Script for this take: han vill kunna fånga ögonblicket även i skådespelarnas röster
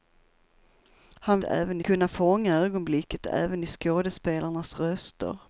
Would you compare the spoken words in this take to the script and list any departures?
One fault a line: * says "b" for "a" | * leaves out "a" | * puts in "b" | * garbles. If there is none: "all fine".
* says "även" for "vill"